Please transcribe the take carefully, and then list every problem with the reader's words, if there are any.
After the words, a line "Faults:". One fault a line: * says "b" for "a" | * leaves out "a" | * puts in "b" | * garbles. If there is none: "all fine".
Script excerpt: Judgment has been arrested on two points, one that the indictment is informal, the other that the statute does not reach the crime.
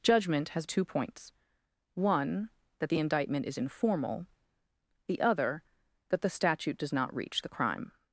Judgment has two points, one that the indictment is informal, the other that the statute does not reach the crime.
Faults:
* leaves out "been arrested on"